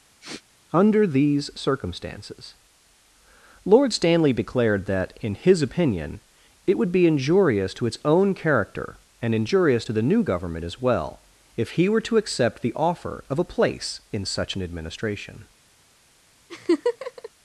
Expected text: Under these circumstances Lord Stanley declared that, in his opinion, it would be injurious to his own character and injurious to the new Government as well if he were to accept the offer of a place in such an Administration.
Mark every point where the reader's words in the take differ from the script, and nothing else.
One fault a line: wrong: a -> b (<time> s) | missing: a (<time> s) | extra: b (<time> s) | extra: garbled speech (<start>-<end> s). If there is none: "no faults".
wrong: his -> its (7.9 s)